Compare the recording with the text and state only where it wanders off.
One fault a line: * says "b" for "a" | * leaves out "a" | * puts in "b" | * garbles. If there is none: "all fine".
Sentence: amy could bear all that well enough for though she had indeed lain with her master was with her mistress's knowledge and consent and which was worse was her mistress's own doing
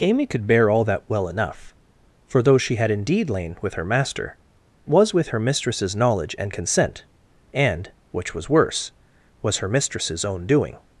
all fine